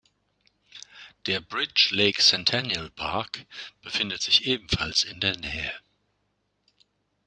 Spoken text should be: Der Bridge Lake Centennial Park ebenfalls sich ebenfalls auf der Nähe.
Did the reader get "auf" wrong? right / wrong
wrong